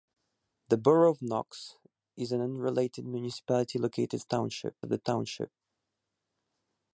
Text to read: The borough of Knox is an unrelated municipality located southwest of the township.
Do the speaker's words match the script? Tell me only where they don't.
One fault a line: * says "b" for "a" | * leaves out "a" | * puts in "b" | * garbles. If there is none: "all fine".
* says "township" for "southwest"